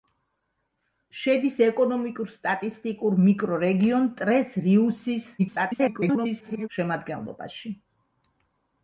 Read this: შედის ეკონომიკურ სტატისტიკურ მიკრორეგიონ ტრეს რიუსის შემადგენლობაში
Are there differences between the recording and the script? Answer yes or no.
yes